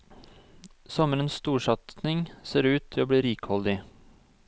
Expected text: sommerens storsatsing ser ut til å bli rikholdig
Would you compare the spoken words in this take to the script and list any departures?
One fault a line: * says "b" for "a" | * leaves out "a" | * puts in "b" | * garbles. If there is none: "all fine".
all fine